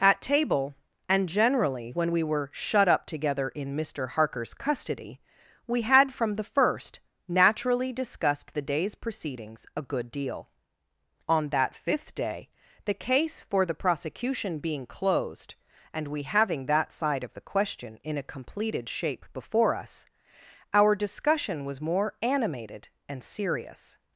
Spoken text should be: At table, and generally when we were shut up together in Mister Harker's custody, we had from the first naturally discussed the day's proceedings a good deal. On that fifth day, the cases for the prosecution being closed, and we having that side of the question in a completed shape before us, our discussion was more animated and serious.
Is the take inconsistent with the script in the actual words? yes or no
yes